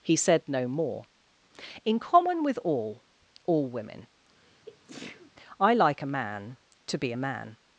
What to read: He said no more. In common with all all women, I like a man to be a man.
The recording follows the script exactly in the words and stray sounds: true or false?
false